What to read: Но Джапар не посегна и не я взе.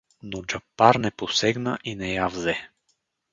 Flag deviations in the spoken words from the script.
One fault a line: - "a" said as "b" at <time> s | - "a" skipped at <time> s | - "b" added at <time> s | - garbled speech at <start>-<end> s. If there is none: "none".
none